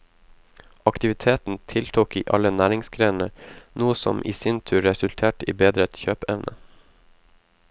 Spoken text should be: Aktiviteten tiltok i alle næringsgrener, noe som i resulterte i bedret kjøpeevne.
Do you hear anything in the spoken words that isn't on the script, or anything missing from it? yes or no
yes